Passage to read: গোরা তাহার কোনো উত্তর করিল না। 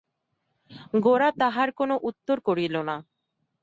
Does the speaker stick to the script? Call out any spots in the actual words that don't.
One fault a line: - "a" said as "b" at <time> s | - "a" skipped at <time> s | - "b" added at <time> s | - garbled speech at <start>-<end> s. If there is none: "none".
none